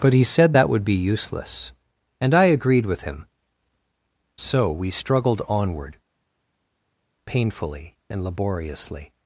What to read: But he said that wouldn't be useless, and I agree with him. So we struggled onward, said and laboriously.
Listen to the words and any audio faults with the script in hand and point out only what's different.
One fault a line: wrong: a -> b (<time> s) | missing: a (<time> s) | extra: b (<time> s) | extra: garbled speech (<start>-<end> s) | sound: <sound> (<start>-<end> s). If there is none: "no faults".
wrong: wouldn't -> would (0.7 s)
wrong: agree -> agreed (2.4 s)
wrong: said -> painfully (7.3 s)